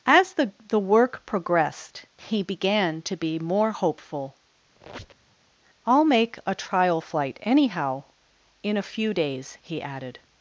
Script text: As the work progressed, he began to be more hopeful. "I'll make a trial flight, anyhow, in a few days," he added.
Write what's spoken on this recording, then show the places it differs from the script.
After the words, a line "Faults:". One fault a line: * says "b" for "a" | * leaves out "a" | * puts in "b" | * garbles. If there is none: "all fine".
As the the work progressed, he began to be more hopeful. "I'll make a trial flight, anyhow, in a few days," he added.
Faults:
* puts in "the"